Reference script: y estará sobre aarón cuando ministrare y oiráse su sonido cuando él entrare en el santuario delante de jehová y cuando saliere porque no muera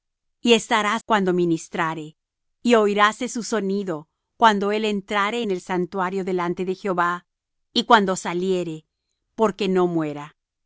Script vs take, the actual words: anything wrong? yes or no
yes